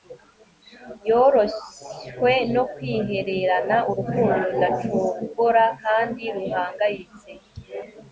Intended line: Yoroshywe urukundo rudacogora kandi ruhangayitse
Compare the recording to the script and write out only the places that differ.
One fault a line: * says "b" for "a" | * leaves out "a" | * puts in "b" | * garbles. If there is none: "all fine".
* puts in "no kwihererana"